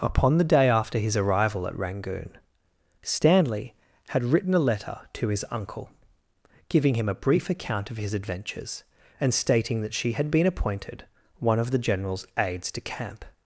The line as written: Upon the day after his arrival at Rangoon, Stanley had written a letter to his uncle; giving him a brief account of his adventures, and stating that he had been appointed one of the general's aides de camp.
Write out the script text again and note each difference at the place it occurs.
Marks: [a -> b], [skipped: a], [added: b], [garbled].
Upon the day after his arrival at Rangoon, Stanley had written a letter to his uncle; giving him a brief account of his adventures, and stating that [he -> she] had been appointed one of the general's aides de camp.